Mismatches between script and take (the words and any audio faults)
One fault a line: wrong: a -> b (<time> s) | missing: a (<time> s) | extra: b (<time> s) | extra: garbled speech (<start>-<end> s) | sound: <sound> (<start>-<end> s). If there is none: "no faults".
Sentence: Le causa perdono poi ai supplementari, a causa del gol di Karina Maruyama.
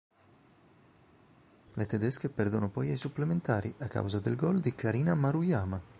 wrong: causa -> tedesche (1.9 s)